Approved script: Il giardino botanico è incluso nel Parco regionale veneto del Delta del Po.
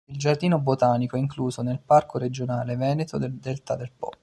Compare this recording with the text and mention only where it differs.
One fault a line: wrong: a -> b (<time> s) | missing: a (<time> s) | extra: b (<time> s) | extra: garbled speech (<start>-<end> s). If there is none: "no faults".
no faults